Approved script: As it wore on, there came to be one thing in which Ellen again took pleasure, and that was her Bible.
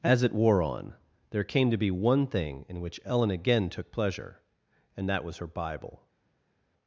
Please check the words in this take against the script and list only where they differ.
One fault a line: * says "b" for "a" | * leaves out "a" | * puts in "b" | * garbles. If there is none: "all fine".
all fine